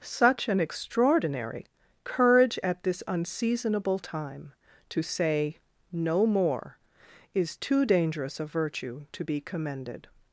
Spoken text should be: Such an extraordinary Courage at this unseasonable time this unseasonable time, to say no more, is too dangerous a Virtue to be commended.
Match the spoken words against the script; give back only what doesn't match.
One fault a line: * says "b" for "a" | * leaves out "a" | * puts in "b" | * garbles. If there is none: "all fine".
* leaves out "this unseasonable time"